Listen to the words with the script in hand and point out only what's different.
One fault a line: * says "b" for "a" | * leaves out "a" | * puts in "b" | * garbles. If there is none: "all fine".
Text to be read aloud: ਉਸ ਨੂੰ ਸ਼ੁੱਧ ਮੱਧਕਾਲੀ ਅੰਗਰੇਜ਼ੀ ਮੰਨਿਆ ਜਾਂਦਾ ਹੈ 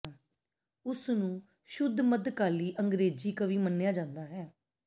* puts in "ਕਵੀ"